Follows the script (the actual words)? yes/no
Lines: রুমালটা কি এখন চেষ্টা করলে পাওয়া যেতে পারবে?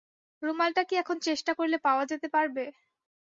yes